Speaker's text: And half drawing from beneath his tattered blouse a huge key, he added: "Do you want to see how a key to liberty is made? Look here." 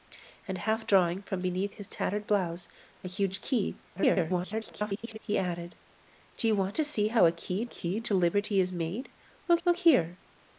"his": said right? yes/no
yes